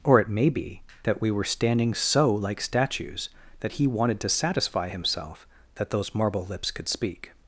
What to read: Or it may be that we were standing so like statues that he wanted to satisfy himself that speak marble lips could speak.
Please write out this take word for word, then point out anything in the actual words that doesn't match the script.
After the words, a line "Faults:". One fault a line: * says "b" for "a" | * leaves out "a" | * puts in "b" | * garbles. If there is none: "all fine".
Or it may be that we were standing so like statues that he wanted to satisfy himself that those marble lips could speak.
Faults:
* says "those" for "speak"